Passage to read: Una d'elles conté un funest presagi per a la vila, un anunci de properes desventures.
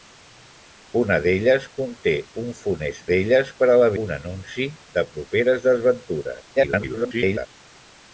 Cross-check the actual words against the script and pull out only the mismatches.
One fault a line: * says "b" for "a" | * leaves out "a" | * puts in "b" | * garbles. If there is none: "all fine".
* says "d'elles" for "presagi"
* leaves out "vila"
* garbles